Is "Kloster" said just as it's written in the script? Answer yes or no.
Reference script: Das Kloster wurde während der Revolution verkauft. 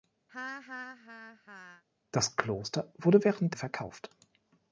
yes